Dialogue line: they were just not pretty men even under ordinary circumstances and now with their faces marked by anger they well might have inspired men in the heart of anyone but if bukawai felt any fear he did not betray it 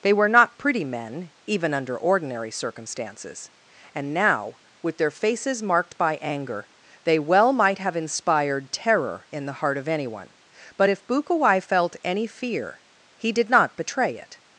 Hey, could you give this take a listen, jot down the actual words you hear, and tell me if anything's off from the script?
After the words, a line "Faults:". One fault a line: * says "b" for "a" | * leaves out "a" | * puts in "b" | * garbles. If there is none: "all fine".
they were not pretty men even under ordinary circumstances and now with their faces marked by anger they well might have inspired terror in the heart of anyone but if bukawai felt any fear he did not betray it
Faults:
* leaves out "just"
* says "terror" for "men"